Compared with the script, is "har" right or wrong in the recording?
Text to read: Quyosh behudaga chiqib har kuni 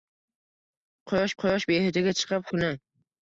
wrong